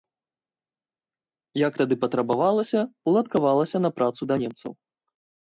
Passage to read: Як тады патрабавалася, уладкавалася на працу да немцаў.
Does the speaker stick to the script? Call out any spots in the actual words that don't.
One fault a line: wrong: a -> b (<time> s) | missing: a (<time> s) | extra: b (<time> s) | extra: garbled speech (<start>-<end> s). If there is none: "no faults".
no faults